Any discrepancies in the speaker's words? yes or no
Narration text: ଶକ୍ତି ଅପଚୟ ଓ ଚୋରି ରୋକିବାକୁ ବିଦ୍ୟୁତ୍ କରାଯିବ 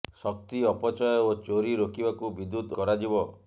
no